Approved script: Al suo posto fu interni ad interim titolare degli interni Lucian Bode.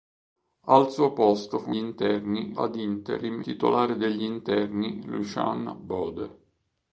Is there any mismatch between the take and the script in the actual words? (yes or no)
no